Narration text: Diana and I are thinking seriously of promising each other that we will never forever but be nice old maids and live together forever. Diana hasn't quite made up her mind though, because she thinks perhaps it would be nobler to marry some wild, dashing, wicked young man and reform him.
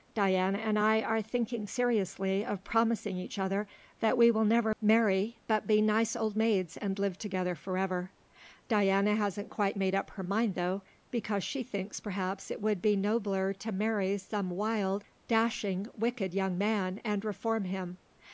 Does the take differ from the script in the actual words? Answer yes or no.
yes